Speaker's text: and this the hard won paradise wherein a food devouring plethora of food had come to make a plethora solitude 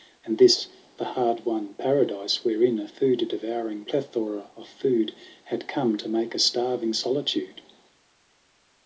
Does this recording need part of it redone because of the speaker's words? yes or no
yes